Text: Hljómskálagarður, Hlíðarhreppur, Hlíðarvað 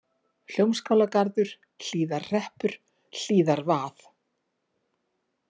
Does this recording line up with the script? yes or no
yes